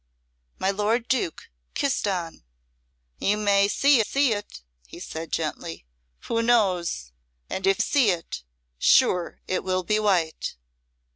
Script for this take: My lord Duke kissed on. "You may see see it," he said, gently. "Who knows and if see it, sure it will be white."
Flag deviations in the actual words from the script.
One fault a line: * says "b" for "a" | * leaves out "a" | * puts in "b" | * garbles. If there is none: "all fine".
all fine